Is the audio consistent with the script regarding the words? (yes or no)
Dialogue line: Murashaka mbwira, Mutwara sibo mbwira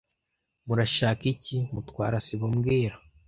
no